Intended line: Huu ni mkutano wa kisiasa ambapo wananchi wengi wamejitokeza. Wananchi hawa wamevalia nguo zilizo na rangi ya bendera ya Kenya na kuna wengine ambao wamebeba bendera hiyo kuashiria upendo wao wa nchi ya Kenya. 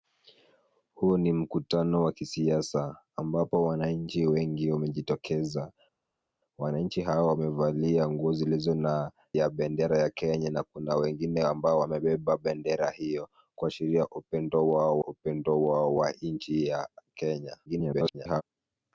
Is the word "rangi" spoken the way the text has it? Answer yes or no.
no